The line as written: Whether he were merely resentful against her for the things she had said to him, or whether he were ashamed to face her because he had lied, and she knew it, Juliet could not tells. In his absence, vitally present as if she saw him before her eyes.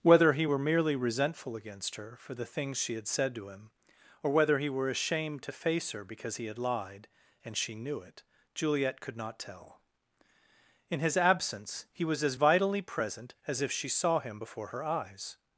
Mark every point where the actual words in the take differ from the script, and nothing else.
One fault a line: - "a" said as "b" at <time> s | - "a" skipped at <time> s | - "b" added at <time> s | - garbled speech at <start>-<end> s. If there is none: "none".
- "tells" said as "tell" at 9.4 s
- "he was as" added at 11.9 s